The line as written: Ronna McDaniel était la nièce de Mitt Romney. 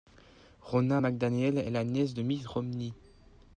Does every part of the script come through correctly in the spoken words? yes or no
no